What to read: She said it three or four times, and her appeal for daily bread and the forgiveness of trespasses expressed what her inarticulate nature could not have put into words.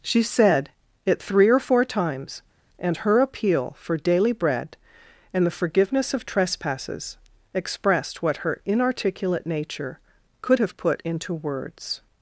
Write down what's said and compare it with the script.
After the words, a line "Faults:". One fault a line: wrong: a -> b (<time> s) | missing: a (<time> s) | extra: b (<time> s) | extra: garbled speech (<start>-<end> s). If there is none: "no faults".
She said it three or four times, and her appeal for daily bread and the forgiveness of trespasses expressed what her inarticulate nature could have put into words.
Faults:
missing: not (10.6 s)